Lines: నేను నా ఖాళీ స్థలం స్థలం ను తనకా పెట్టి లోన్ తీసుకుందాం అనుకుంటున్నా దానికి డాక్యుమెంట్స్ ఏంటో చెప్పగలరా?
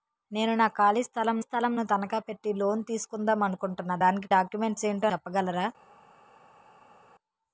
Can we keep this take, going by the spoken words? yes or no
yes